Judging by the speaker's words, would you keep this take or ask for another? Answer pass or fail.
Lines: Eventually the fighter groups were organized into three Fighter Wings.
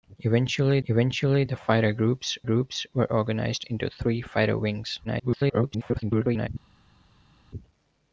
fail